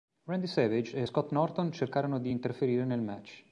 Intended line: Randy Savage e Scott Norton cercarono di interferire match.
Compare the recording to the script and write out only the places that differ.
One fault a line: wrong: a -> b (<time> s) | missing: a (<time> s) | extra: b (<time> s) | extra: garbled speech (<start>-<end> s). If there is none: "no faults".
extra: nel (2.8 s)